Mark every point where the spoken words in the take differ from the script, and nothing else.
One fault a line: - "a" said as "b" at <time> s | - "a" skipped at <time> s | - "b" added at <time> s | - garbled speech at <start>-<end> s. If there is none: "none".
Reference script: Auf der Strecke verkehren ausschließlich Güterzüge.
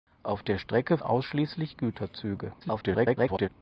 - "verkehren" skipped at 1.0 s
- garbled speech at 2.6-3.5 s